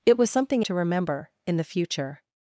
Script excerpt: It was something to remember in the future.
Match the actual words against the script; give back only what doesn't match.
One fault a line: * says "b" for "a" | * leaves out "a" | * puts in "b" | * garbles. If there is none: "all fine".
all fine